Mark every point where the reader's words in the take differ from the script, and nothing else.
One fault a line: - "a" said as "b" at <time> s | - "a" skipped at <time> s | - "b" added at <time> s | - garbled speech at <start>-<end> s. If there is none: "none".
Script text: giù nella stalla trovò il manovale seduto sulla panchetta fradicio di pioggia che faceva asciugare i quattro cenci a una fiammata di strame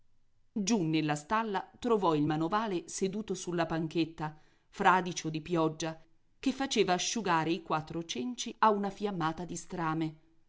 none